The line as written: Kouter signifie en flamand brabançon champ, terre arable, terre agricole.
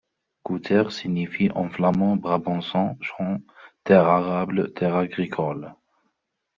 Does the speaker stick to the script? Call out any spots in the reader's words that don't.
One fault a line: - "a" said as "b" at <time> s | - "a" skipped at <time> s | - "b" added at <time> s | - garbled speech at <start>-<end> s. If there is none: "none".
none